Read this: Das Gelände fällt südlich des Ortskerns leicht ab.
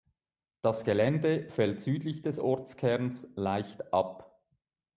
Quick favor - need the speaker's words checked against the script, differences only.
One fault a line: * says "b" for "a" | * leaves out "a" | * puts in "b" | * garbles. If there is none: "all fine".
all fine